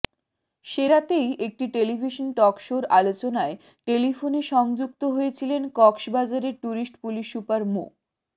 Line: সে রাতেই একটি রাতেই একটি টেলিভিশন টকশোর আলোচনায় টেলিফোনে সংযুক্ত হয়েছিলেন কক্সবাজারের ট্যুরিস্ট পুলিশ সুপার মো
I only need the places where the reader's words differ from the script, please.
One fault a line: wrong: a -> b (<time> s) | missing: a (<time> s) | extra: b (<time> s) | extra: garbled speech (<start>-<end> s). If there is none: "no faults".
missing: রাতেই একটি (1.6 s)